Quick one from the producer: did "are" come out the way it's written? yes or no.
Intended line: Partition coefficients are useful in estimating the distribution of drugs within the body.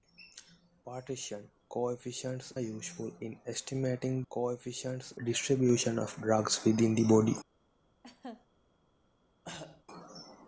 no